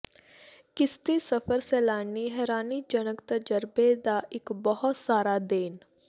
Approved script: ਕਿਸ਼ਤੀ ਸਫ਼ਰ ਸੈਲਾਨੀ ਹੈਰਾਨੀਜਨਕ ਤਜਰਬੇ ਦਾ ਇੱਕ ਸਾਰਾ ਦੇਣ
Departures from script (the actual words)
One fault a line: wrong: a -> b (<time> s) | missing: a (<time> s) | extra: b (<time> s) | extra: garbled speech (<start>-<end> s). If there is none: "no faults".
extra: ਬਹੁਤ (4.5 s)